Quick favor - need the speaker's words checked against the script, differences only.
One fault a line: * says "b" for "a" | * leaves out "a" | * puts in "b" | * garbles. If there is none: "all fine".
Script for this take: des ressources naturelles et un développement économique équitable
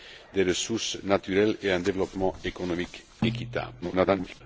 * garbles